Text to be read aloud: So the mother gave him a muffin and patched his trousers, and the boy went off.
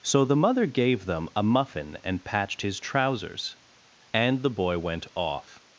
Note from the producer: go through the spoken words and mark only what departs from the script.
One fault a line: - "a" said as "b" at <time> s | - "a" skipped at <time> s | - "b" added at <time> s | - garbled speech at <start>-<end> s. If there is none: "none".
- "him" said as "them" at 1.1 s